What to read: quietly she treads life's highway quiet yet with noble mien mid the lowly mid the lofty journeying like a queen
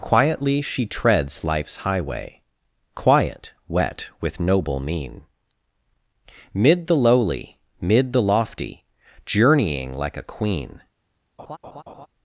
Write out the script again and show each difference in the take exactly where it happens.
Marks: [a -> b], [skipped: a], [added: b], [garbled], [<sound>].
quietly she treads life's highway quiet [yet -> wet] with noble mien mid the lowly mid the lofty journeying like a queen [laugh]